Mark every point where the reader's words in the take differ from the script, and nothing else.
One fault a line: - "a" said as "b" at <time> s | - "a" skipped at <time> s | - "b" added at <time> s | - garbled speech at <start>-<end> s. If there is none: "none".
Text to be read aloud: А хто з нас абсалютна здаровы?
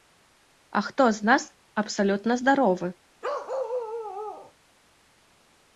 none